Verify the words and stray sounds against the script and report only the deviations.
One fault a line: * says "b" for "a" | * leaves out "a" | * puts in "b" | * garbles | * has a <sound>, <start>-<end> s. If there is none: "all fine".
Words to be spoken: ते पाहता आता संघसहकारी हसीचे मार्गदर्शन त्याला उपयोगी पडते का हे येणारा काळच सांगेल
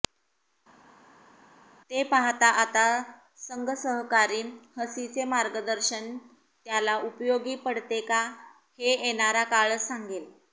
all fine